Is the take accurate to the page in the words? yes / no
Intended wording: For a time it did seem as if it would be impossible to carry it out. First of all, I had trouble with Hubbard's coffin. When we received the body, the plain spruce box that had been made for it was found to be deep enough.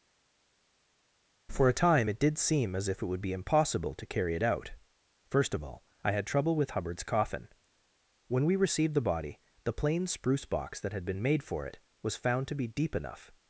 yes